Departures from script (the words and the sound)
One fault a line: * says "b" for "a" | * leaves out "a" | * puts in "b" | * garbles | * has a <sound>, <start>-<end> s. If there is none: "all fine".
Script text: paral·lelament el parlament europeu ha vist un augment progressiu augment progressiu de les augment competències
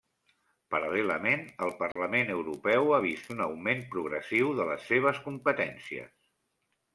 * has a dropout, 1.9-2.0 s
* leaves out "augment progressiu"
* says "seves" for "augment"